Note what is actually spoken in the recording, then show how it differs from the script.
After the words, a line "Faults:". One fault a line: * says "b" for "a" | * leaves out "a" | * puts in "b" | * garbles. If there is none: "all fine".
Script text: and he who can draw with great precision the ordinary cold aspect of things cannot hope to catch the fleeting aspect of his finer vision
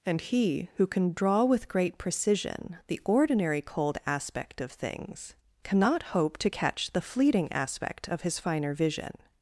and he who can draw with great precision the ordinary cold aspect of things cannot hope to catch the fleeting aspect of his finer vision
Faults:
all fine